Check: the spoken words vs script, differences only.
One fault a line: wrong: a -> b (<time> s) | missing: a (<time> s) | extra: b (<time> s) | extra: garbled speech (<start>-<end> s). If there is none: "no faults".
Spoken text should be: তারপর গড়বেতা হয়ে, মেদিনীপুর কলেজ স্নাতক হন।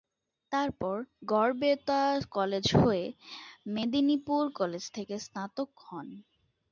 extra: কলেজ (2.3 s)
extra: থেকে (4.9 s)